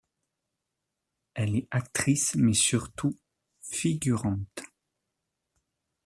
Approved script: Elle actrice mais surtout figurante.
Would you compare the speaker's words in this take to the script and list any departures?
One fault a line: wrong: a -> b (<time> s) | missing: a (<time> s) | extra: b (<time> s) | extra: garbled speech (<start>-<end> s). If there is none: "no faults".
extra: est (1.5 s)